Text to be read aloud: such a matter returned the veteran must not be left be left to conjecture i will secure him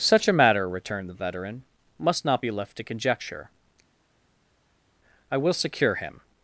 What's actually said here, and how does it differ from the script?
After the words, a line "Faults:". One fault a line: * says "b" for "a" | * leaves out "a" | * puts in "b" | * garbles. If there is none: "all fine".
such a matter returned the veteran must not be left to conjecture i will secure him
Faults:
* leaves out "be left"